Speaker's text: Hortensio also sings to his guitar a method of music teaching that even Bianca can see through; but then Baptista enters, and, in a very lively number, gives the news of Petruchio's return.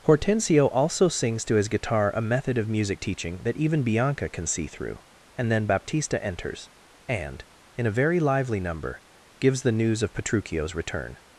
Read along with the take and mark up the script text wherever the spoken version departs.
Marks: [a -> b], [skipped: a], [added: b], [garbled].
Hortensio also sings to his guitar a method of music teaching that even Bianca can see through; [but -> and] then Baptista enters, and, in a very lively number, gives the news of Petruchio's return.